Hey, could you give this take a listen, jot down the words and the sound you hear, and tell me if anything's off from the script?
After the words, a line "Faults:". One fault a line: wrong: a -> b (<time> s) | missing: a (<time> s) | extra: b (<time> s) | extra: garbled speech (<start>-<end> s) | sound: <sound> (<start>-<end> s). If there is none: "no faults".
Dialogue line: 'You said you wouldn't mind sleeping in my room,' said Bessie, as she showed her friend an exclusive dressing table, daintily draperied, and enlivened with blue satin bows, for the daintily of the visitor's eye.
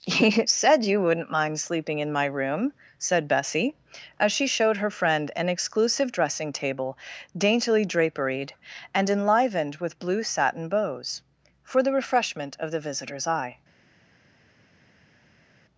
'You said you wouldn't mind sleeping in my room,' said Bessie, as she showed her friend an exclusive dressing table, daintily draperied, and enlivened with blue satin bows, for the refreshment of the visitor's eye.
Faults:
wrong: daintily -> refreshment (11.9 s)